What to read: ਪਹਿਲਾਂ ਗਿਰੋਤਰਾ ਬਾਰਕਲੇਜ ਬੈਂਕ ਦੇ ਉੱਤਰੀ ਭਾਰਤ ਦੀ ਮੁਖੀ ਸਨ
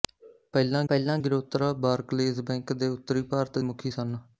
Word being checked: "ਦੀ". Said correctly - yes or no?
no